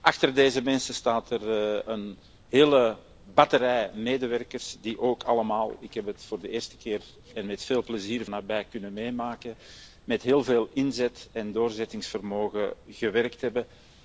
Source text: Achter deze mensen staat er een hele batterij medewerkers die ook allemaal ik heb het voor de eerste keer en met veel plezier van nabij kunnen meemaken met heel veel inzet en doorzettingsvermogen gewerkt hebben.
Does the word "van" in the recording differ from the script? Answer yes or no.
yes